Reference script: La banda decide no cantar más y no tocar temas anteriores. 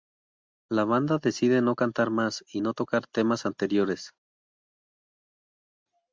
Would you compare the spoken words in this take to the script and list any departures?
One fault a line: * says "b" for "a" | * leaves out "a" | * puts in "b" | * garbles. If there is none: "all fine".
all fine